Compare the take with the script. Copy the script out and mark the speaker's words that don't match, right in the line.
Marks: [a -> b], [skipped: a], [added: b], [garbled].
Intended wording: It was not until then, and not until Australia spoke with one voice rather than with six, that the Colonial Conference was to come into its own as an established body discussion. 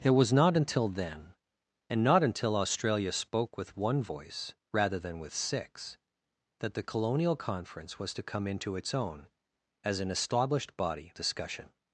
It was not until then, and not until Australia spoke with one voice rather than with six, that the Colonial Conference was to come into its own as an established body discussion.